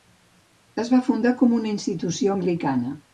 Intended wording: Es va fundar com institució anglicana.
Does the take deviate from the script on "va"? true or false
false